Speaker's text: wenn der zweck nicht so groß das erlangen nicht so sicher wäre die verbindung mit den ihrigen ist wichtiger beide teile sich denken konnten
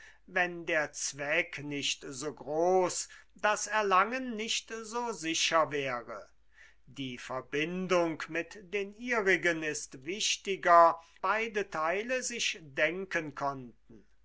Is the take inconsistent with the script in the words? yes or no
no